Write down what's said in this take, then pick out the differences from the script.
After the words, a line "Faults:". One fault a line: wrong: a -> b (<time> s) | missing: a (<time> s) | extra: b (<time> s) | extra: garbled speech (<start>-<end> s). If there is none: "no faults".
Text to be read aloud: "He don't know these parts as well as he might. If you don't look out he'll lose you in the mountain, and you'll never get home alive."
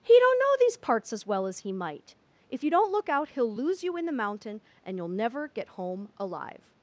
"He don't know these parts as well as he might. If you don't look out he'll lose you in the mountain, and you'll never get home alive."
Faults:
no faults